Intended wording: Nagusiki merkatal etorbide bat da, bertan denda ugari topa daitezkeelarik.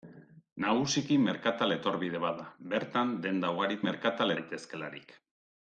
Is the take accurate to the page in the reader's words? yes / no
no